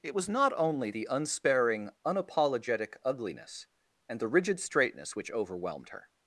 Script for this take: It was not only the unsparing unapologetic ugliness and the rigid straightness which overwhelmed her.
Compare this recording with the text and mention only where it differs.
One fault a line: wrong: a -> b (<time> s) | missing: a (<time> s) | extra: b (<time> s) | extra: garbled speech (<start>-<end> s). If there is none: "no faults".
no faults